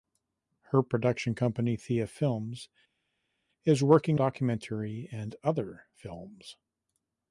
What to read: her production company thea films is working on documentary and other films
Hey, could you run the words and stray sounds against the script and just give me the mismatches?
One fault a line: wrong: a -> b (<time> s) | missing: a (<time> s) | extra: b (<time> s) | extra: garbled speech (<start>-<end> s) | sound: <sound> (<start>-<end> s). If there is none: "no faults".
missing: on (4.2 s)